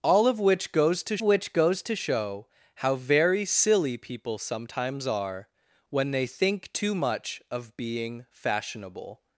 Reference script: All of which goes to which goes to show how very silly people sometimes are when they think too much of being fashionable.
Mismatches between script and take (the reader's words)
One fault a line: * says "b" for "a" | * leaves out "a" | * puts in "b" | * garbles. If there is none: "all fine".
all fine